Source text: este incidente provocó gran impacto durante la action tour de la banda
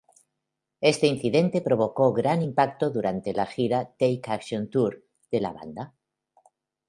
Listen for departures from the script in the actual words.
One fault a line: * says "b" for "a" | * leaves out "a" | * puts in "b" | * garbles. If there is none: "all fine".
* puts in "gira take"